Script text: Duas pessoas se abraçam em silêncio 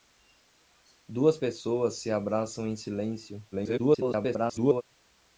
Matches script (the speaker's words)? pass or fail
fail